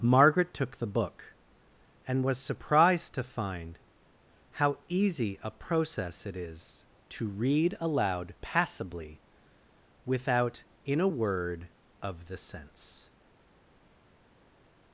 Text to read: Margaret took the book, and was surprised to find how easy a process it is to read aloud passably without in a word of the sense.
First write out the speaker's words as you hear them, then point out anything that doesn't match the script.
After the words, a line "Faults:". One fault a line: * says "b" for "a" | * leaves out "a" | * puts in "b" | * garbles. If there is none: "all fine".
Margaret took the book, and was surprised to find how easy a process it is to read aloud passably without in a word of the sense.
Faults:
all fine